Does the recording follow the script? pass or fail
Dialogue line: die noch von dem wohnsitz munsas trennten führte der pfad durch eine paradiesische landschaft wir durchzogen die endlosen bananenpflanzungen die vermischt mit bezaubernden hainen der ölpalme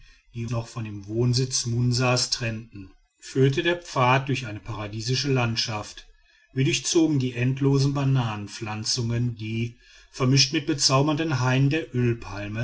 pass